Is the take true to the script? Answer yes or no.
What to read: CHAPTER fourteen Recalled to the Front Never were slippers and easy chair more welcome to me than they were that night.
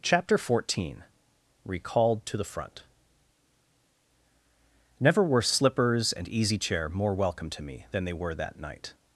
yes